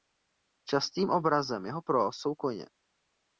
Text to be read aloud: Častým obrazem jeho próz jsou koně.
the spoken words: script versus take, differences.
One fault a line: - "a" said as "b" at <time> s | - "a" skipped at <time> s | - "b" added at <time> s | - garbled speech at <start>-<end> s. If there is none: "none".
none